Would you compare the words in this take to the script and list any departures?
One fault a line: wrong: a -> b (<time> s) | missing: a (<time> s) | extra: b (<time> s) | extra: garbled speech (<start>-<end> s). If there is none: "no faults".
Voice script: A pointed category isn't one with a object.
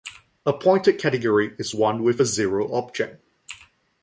wrong: isn't -> is (1.6 s)
extra: zero (2.2 s)